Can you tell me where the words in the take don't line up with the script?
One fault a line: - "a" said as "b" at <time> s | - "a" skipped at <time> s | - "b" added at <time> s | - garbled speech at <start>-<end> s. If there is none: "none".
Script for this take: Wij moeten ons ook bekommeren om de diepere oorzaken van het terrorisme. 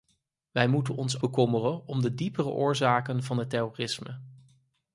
- "ook" skipped at 1.2 s